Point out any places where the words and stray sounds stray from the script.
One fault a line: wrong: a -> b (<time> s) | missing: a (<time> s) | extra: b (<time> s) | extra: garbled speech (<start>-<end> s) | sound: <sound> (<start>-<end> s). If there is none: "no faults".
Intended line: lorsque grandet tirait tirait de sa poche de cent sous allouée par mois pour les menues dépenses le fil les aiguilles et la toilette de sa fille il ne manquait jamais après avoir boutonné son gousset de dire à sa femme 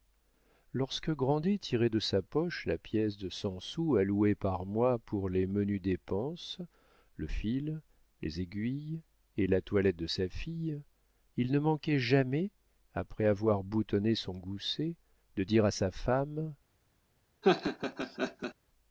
missing: tirait (1.9 s)
extra: la pièce (2.6 s)
sound: laugh (17.4-18.5 s)